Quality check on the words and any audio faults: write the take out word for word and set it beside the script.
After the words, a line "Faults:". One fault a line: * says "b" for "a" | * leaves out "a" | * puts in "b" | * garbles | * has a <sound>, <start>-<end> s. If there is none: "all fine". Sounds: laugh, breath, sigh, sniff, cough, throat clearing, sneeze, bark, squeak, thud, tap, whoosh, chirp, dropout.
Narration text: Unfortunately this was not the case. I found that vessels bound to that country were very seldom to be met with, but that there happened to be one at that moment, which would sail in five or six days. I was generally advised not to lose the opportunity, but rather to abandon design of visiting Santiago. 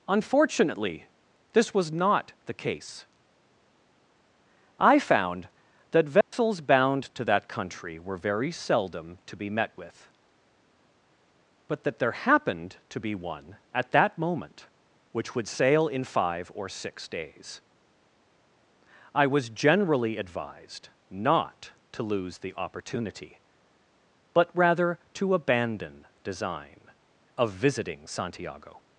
Unfortunately this was not the case. I found that vessels bound to that country were very seldom to be met with, but that there happened to be one at that moment, which would sail in five or six days. I was generally advised not to lose the opportunity, but rather to abandon design of visiting Santiago.
Faults:
* has a dropout, 6.2-6.3 s